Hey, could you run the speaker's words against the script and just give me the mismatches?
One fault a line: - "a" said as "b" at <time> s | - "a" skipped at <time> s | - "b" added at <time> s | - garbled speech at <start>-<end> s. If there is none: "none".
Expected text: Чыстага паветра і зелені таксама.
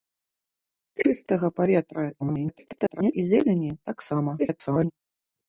- garbled speech at 2.2-3.1 s
- garbled speech at 4.4-4.9 s